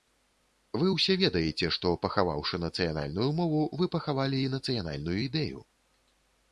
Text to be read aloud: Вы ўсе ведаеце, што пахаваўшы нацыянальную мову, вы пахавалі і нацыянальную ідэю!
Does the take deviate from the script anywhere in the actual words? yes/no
no